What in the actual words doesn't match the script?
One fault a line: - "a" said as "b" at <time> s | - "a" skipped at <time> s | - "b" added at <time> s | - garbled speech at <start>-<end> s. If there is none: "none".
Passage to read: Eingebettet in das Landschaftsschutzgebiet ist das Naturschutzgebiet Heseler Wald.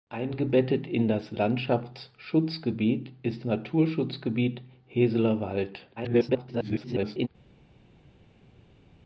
- "das" skipped at 3.5 s
- garbled speech at 6.0-7.3 s